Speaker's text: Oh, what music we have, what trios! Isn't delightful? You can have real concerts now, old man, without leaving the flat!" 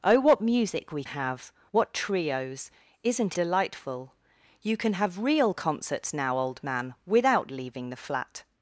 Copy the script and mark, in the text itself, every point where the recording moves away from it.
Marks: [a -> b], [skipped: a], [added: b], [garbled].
Oh, what music we have, what trios! Isn't delightful? You can have real concerts now, old man, without leaving the flat!"